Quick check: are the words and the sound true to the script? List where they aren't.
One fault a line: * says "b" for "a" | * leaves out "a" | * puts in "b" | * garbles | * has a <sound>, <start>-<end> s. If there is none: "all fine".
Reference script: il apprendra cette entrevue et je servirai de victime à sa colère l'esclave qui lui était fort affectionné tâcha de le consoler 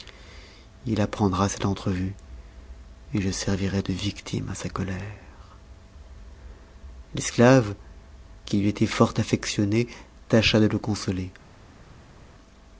all fine